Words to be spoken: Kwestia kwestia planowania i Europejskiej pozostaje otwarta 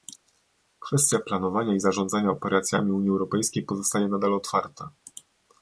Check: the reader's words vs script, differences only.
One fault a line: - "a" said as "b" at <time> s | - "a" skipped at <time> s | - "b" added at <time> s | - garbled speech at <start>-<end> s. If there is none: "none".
- "kwestia" skipped at 1.2 s
- "zarządzania operacjami Unii" added at 1.8 s
- "nadal" added at 4.1 s